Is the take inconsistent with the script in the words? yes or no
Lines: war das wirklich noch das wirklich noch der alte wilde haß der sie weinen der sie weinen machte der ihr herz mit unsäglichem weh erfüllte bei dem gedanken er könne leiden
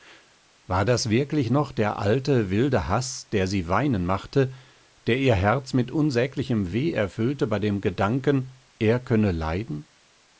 yes